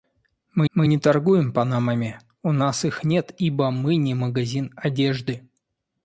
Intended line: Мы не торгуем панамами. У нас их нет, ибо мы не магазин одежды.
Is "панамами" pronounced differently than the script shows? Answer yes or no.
no